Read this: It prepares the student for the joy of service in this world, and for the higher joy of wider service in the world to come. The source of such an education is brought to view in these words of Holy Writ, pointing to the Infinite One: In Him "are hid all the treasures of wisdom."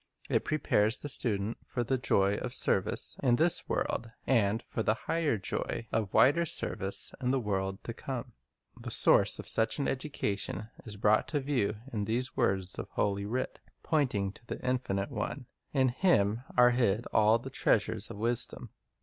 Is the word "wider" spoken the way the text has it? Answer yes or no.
yes